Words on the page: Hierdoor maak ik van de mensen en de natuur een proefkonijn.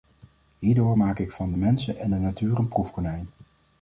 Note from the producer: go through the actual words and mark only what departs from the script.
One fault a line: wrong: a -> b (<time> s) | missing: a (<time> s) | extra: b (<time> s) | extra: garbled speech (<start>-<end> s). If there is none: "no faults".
no faults